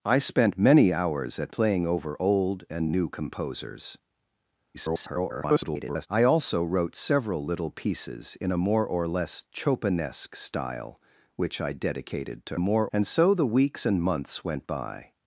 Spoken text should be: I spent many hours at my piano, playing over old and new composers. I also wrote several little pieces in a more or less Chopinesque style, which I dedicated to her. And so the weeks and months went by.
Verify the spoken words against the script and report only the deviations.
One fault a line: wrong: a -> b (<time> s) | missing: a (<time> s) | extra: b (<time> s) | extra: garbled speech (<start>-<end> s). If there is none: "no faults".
missing: my piano (1.5 s)
extra: garbled speech (4.7-6.1 s)
wrong: her -> more (12.6 s)